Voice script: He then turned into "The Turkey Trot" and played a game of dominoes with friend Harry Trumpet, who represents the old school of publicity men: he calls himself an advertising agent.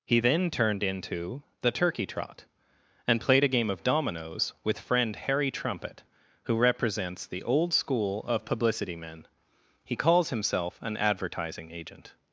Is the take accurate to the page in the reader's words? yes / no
yes